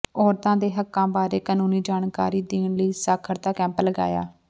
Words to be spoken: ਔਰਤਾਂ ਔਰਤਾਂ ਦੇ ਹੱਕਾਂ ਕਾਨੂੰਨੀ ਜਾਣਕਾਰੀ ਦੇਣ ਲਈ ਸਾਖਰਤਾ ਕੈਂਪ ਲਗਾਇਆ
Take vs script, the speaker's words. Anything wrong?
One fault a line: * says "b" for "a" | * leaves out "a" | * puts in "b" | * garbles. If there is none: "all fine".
* leaves out "ਔਰਤਾਂ"
* puts in "ਬਾਰੇ"